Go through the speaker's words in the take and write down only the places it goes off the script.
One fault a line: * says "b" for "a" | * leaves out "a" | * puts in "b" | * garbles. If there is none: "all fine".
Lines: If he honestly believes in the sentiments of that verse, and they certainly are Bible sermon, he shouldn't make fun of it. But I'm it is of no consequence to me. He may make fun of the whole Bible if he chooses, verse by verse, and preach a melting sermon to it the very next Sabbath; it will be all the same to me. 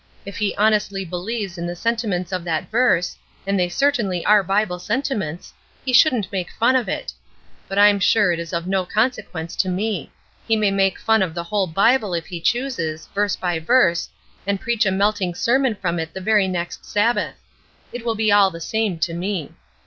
* says "sentiments" for "sermon"
* puts in "sure"
* says "from" for "to"